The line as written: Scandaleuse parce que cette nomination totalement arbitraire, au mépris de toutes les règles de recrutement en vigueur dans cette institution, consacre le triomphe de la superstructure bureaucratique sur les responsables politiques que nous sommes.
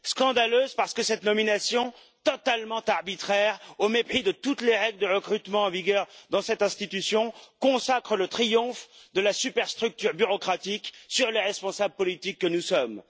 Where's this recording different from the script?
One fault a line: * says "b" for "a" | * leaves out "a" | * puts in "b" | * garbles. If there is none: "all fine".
all fine